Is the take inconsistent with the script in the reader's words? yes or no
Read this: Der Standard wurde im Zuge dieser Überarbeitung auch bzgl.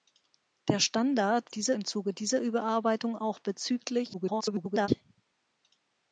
yes